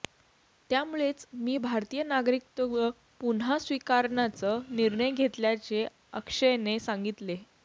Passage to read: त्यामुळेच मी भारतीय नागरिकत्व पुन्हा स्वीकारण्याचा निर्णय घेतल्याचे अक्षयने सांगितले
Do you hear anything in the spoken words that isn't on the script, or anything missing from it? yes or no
no